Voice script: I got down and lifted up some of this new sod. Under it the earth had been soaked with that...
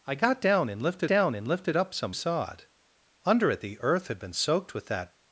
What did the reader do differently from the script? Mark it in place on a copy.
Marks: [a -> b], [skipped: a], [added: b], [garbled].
I got down and lifted [up some of this new -> down and lifted up some] sod. Under it the earth had been soaked with that...